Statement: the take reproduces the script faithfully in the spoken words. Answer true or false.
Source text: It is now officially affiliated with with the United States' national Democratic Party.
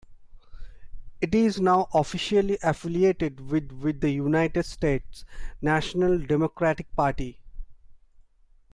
true